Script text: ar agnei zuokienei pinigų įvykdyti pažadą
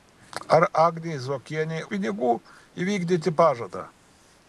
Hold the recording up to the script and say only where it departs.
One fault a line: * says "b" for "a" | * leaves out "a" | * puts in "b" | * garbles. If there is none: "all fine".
all fine